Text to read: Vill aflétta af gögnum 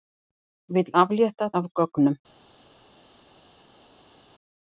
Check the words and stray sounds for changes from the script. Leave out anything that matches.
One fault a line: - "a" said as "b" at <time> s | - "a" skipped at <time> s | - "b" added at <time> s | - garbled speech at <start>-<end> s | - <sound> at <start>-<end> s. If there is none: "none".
none